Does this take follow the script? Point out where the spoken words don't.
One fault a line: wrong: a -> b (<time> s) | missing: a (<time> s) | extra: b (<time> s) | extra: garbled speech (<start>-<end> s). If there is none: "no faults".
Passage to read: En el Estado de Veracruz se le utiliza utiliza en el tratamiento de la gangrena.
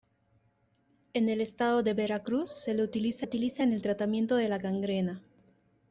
no faults